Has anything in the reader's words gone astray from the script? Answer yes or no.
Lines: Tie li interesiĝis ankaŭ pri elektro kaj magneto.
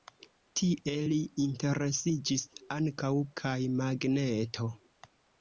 yes